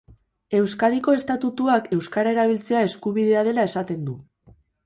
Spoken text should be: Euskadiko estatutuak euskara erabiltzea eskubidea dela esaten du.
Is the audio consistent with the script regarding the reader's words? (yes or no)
yes